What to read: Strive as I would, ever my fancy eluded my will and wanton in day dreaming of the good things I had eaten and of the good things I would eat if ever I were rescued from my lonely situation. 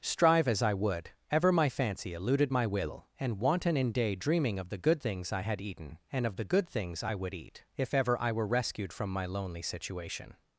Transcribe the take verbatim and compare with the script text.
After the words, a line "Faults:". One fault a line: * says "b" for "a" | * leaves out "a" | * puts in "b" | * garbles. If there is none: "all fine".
Strive as I would, ever my fancy eluded my will and wanton in day dreaming of the good things I had eaten and of the good things I would eat if ever I were rescued from my lonely situation.
Faults:
all fine